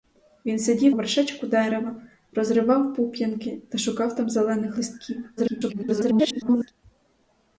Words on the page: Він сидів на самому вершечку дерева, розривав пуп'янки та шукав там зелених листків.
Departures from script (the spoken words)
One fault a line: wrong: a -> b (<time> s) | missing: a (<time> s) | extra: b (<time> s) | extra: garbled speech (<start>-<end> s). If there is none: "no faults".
missing: на самому (0.9 s)
extra: garbled speech (5.4-6.7 s)